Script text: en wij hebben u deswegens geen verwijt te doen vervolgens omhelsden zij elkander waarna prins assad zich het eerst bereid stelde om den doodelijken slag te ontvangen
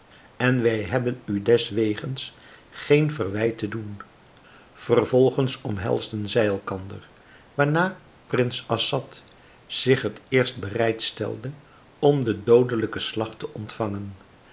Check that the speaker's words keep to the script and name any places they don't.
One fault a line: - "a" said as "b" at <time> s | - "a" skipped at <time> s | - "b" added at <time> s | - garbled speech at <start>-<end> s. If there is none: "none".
none